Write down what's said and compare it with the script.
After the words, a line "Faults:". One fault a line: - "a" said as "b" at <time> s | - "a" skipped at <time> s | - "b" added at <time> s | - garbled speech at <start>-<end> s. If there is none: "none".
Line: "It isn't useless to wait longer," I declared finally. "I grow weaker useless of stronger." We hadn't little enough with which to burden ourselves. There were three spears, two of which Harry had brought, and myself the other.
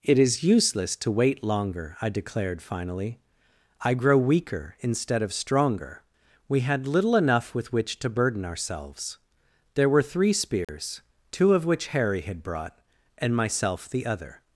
"It is useless to wait longer," I declared finally. "I grow weaker instead of stronger." We had little enough with which to burden ourselves. There were three spears, two of which Harry had brought, and myself the other.
Faults:
- "isn't" said as "is" at 0.2 s
- "useless" said as "instead" at 4.8 s
- "hadn't" said as "had" at 6.6 s